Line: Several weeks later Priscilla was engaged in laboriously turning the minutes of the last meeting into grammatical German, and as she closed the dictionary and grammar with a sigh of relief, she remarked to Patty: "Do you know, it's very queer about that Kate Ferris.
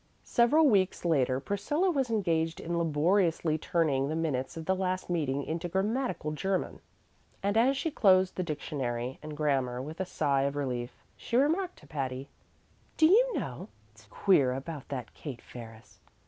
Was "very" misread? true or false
true